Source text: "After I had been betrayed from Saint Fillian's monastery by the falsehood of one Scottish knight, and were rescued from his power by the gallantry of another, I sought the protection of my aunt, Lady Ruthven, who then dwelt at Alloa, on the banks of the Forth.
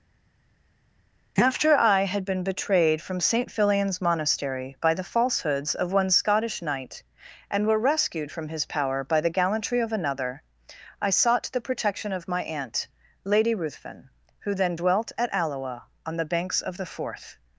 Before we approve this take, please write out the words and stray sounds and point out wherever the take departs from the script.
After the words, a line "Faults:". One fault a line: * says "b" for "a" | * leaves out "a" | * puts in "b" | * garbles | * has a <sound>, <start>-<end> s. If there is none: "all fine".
"After I had been betrayed from Saint Fillian's monastery by the falsehoods of one Scottish knight, and were rescued from his power by the gallantry of another, I sought the protection of my aunt, Lady Ruthven, who then dwelt at Alloa, on the banks of the Forth.
Faults:
* says "falsehoods" for "falsehood"